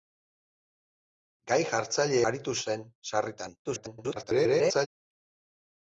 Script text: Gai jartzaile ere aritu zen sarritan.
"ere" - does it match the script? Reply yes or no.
no